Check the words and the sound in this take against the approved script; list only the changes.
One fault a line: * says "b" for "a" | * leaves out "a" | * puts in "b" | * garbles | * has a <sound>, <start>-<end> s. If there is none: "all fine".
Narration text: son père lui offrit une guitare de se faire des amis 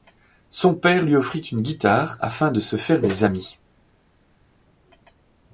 * puts in "afin"